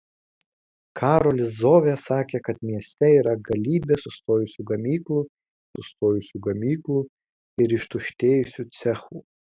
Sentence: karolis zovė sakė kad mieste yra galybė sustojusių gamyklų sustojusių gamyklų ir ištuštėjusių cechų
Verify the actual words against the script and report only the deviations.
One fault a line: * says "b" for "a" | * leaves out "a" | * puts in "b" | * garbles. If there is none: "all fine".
all fine